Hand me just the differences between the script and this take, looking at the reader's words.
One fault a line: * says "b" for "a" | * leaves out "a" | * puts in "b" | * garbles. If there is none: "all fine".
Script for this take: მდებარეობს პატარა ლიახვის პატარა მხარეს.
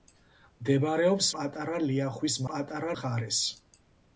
all fine